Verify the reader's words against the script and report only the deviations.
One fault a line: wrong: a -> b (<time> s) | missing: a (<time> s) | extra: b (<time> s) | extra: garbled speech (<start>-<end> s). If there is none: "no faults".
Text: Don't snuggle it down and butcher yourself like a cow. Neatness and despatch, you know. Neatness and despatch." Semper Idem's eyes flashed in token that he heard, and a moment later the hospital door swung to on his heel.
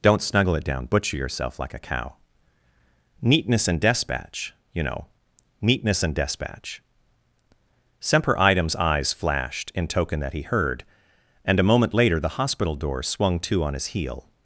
missing: and (0.8 s)